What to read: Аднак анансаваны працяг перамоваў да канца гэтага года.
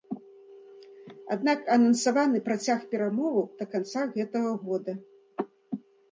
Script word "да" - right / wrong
right